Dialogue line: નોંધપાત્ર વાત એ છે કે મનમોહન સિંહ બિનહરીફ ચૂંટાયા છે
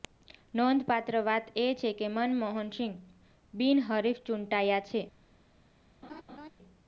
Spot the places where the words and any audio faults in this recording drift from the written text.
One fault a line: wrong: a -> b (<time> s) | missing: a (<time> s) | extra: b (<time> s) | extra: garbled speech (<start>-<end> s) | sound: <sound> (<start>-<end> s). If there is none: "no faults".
sound: laugh (6.0-6.5 s)